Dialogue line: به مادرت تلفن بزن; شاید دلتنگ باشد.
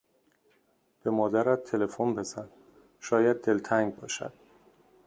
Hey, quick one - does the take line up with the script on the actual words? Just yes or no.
yes